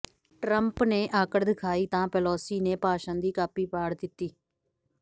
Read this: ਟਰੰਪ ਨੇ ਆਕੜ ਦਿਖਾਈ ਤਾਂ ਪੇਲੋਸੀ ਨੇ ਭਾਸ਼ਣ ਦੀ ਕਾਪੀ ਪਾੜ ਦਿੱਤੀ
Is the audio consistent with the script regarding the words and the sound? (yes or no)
yes